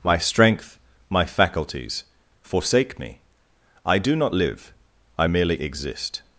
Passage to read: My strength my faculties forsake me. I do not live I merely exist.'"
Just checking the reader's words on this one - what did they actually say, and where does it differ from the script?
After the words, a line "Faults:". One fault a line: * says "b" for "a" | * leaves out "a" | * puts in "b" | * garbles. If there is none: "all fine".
My strength my faculties forsake me. I do not live I merely exist.'"
Faults:
all fine